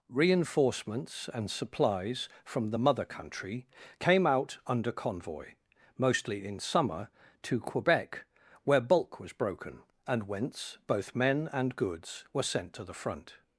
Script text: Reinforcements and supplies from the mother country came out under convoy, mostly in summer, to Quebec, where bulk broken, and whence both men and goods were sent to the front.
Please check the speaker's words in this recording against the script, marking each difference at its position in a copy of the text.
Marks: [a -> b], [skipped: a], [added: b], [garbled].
Reinforcements and supplies from the mother country came out under convoy, mostly in summer, to Quebec, where bulk [added: was] broken, and whence both men and goods were sent to the front.